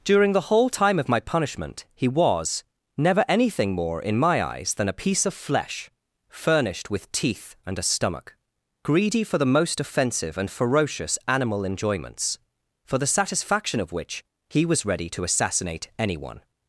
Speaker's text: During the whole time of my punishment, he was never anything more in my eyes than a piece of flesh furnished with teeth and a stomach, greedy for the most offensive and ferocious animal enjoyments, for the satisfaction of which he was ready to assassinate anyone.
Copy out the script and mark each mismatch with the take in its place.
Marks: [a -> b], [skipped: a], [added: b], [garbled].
During the whole time of my punishment, he was never anything more in my eyes than a piece of flesh furnished with teeth and a stomach, greedy for the most offensive and ferocious animal enjoyments, for the satisfaction of which he was ready to assassinate anyone.